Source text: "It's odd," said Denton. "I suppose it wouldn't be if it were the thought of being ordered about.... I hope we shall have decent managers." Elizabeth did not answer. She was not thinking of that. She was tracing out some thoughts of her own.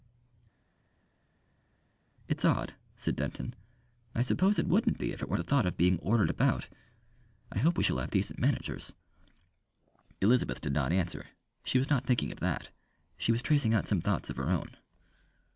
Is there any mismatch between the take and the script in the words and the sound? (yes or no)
no